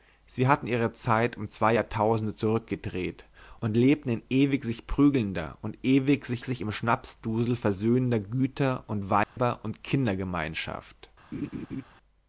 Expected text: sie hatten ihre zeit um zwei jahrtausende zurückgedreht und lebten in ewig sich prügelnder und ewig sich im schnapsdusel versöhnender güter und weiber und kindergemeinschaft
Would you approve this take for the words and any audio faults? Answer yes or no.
no